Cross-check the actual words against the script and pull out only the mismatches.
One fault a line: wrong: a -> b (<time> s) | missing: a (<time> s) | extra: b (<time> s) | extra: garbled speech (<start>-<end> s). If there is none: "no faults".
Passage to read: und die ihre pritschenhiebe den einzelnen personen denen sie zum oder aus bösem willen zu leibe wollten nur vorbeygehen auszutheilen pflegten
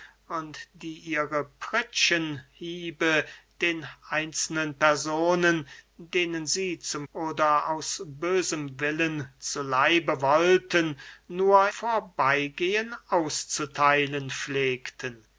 no faults